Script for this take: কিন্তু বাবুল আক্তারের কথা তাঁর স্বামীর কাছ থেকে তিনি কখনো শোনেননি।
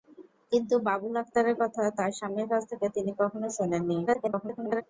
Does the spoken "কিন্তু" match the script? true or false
true